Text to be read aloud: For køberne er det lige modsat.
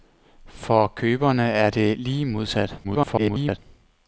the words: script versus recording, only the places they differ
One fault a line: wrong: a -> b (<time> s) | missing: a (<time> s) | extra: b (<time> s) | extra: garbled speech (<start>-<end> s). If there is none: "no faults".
extra: garbled speech (2.8-3.6 s)